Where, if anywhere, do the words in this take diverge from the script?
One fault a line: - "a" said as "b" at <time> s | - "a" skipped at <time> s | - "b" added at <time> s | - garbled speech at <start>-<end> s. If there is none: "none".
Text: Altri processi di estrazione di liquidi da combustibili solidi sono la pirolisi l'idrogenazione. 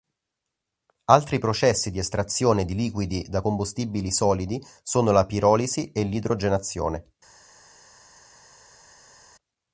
- "e" added at 5.9 s